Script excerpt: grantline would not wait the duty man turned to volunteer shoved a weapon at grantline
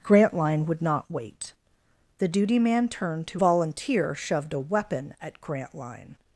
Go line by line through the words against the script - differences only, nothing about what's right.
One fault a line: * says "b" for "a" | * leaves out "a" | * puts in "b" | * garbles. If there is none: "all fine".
all fine